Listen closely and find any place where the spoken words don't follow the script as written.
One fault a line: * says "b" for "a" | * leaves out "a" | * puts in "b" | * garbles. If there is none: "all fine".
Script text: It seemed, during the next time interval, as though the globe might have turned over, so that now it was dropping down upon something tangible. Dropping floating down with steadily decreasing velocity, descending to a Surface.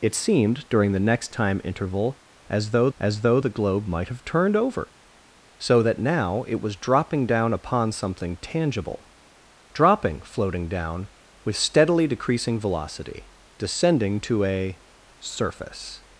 * puts in "as though"